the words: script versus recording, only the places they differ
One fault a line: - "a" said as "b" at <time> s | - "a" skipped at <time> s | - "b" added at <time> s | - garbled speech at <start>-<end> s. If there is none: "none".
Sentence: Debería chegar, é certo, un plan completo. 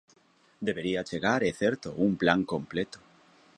none